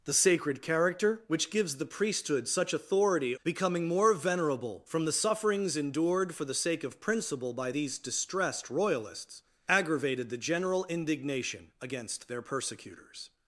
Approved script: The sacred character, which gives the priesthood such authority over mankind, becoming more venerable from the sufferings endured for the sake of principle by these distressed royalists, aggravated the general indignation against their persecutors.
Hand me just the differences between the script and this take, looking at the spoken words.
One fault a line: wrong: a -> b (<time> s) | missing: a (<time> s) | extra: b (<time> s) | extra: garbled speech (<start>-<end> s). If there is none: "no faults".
missing: over mankind (3.4 s)